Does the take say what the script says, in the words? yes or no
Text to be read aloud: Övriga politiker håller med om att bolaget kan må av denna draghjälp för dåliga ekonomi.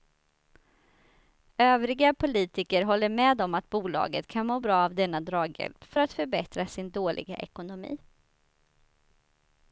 no